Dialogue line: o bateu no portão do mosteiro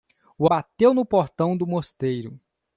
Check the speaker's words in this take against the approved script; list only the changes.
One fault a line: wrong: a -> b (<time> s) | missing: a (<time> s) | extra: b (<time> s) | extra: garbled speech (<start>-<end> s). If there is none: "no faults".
no faults